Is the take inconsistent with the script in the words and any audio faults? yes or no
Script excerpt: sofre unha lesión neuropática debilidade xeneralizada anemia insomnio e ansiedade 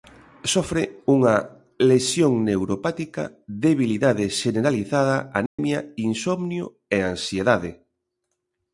yes